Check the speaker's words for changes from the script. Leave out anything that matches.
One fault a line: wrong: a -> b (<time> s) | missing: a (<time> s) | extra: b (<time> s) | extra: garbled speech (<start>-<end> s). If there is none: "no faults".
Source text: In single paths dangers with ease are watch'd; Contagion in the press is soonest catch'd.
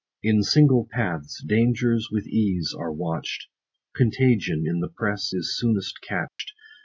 no faults